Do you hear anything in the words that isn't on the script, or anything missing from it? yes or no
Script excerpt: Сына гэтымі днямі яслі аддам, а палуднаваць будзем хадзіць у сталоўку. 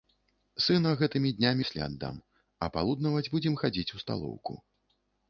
no